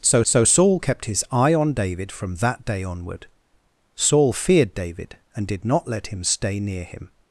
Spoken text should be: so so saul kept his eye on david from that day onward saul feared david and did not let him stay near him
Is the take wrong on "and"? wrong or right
right